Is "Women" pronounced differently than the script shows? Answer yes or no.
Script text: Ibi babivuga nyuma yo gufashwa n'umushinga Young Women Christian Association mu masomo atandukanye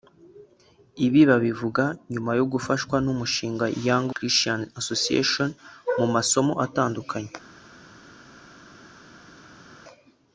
yes